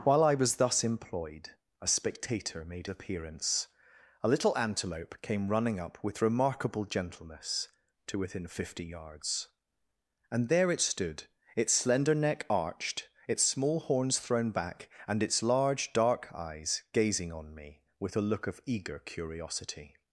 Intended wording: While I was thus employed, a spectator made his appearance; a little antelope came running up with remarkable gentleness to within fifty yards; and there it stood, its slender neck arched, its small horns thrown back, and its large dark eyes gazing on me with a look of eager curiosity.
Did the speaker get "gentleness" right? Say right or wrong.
right